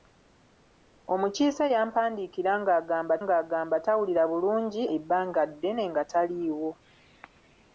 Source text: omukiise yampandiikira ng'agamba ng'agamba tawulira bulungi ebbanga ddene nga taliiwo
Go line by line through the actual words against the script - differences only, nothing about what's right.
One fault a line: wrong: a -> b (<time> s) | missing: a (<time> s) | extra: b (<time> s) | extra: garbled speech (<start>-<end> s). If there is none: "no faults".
no faults